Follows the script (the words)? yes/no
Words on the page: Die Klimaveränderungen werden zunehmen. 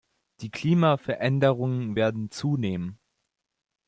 yes